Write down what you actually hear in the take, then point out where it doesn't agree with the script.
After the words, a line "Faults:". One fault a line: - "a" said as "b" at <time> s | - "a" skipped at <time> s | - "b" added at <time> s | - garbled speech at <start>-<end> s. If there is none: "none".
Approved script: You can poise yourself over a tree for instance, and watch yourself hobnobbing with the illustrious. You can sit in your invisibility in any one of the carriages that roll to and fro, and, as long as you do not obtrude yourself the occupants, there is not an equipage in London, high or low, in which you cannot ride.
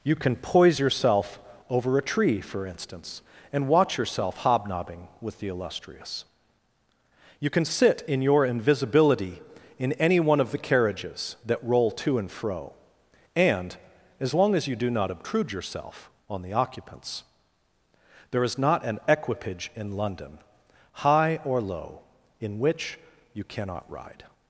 You can poise yourself over a tree for instance, and watch yourself hobnobbing with the illustrious. You can sit in your invisibility in any one of the carriages that roll to and fro, and, as long as you do not obtrude yourself on the occupants, there is not an equipage in London, high or low, in which you cannot ride.
Faults:
- "on" added at 16.3 s